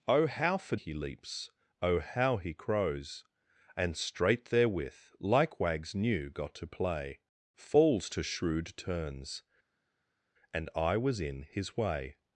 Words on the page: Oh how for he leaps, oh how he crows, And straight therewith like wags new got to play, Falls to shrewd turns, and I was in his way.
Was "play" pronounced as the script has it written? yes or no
yes